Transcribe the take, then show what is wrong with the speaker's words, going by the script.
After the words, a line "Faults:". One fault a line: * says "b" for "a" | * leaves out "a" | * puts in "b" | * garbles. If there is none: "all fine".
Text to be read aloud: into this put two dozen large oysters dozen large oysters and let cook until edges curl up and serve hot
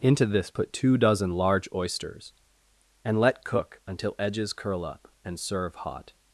into this put two dozen large oysters and let cook until edges curl up and serve hot
Faults:
* leaves out "dozen large oysters"